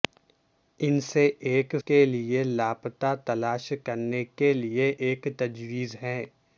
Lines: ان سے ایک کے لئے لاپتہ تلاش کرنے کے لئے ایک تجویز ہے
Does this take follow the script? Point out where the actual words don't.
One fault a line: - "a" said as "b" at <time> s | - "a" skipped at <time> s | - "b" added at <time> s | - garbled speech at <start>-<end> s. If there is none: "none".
none